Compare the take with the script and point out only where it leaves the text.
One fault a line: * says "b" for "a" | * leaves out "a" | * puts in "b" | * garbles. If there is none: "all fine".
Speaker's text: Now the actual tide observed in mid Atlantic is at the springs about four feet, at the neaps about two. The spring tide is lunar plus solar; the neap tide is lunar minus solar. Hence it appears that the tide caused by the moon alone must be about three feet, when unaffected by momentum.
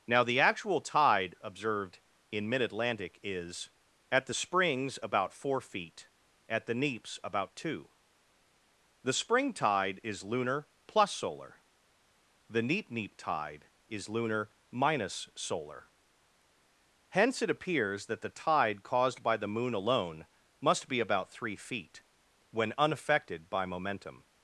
* puts in "neap"